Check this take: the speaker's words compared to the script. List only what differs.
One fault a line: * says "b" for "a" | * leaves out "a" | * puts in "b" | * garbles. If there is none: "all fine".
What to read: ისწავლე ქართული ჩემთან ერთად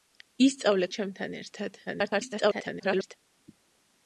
* leaves out "ქართული"
* garbles